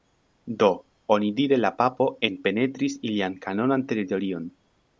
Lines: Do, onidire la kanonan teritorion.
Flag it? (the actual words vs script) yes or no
yes